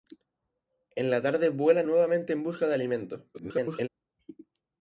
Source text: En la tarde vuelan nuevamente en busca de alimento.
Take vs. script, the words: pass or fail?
fail